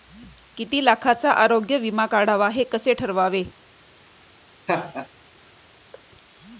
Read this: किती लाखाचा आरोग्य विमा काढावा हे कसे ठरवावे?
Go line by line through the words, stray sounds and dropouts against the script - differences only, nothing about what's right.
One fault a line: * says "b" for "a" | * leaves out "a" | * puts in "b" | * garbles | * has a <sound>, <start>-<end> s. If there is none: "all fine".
* has a laugh, 4.7-5.1 s
* has a thud, 5.9-6.1 s